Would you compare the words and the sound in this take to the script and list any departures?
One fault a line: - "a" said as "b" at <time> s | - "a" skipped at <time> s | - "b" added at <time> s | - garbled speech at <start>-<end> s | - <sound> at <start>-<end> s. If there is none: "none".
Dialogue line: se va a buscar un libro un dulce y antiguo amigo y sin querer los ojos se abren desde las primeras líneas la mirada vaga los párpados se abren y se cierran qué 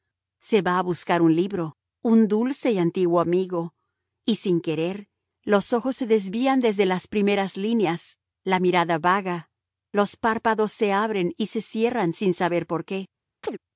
- "abren" said as "desvían" at 6.1 s
- "sin saber por" added at 12.1 s
- chirp at 13.4-13.6 s